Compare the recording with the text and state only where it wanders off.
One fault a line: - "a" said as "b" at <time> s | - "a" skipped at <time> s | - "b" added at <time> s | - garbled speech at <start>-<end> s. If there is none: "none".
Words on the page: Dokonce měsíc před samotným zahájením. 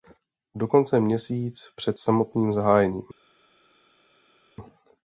none